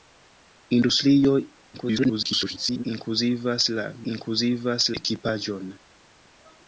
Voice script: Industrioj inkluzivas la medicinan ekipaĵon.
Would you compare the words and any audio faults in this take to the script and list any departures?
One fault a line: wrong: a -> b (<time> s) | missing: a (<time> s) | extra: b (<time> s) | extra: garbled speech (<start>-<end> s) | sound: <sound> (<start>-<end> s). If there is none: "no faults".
extra: garbled speech (1.7-2.8 s)
wrong: medicinan -> inkluzivas (4.1 s)